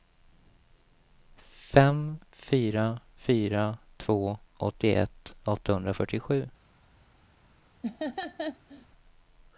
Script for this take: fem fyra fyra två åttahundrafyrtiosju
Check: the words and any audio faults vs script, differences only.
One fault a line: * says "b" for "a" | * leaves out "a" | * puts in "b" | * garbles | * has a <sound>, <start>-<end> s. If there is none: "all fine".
* puts in "åttioett"
* has a laugh, 7.8-8.9 s